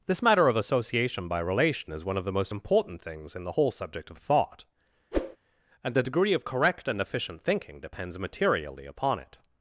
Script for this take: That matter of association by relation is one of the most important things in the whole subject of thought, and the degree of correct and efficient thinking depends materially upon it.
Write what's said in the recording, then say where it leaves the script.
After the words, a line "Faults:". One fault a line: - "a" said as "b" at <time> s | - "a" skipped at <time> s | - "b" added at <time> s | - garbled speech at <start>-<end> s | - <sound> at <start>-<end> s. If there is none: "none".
This matter of association by relation is one of the most important things in the whole subject of thought, and the degree of correct and efficient thinking depends materially upon it.
Faults:
- "That" said as "This" at 0.1 s
- whoosh at 5.1-5.4 s